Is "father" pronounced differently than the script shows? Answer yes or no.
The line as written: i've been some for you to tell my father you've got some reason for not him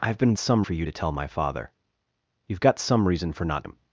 no